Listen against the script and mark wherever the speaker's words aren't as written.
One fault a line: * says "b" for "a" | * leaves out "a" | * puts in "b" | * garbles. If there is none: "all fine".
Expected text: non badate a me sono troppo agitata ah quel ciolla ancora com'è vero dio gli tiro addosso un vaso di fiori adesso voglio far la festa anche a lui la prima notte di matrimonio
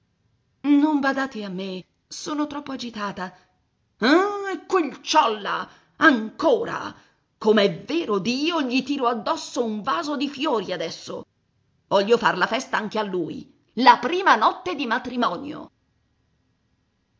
all fine